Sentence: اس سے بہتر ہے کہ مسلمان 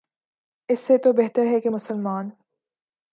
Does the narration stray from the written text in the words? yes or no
yes